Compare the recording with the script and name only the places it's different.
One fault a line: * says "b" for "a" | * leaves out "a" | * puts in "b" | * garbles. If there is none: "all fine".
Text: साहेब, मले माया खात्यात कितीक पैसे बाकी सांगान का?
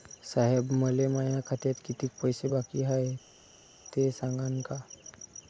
* puts in "हाय ते"